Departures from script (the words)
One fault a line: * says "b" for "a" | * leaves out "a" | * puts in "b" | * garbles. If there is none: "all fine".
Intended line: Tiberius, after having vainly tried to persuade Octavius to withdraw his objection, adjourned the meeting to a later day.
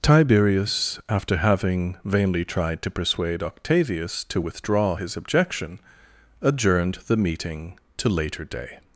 * leaves out "a"